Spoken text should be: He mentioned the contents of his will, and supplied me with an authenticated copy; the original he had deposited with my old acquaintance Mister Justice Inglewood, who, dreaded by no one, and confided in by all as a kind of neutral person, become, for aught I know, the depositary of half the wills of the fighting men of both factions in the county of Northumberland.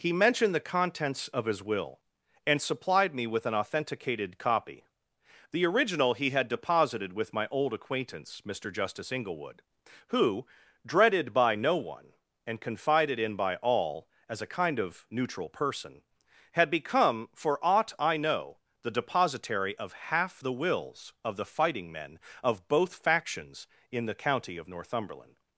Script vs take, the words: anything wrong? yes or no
yes